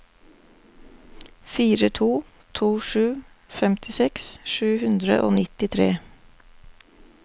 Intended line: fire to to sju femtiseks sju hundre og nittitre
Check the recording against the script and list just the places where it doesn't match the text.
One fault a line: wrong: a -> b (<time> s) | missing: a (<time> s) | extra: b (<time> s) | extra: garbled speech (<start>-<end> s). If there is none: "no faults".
no faults